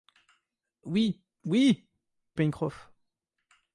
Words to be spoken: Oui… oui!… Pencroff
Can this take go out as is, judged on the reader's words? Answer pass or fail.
pass